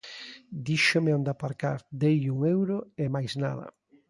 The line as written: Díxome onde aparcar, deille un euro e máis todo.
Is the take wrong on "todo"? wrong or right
wrong